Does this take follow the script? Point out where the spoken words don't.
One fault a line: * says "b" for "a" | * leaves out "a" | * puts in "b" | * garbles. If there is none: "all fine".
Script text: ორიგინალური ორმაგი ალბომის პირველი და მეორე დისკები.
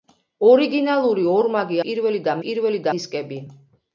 * leaves out "ალბომის"
* says "პირველი" for "მეორე"